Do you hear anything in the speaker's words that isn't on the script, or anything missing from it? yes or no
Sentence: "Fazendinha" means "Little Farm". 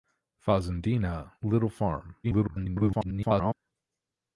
yes